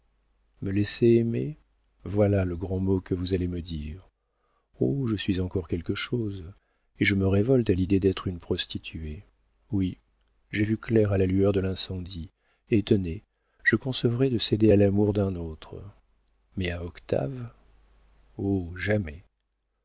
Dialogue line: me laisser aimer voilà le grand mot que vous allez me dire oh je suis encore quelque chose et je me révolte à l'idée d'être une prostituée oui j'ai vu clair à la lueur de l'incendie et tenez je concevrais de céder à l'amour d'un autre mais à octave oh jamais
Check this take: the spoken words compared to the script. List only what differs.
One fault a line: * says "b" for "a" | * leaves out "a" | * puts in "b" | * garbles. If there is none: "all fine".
all fine